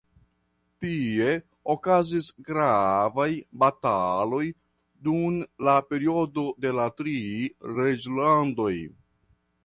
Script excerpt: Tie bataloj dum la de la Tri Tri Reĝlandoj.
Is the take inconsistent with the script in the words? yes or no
yes